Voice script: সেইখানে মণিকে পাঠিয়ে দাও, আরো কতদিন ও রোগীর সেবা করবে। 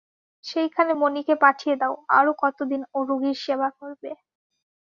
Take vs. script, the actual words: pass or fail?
pass